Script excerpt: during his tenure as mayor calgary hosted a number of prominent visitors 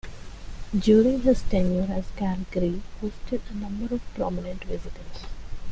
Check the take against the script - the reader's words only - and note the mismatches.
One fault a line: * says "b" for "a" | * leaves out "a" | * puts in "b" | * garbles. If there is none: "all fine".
* leaves out "mayor"